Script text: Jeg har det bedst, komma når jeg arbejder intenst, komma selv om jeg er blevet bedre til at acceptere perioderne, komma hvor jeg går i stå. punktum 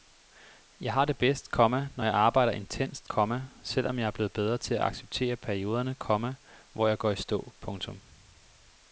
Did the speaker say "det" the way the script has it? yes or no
yes